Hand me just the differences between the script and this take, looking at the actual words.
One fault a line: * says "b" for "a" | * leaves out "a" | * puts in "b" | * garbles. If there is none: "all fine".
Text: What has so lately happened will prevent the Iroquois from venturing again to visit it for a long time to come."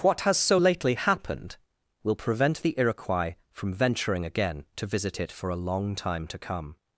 all fine